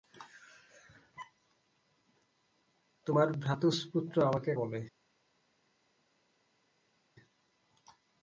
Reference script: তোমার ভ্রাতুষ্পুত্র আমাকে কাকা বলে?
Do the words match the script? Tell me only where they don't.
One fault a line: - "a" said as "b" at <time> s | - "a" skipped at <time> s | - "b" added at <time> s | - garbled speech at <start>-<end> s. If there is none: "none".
- "কাকা" skipped at 4.5 s